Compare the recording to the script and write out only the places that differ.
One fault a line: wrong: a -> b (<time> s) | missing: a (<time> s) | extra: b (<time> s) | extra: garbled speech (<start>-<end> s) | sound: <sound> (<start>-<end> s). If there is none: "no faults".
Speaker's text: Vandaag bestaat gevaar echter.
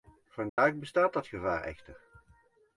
sound: dropout (0.5-0.6 s)
extra: dat (1.1 s)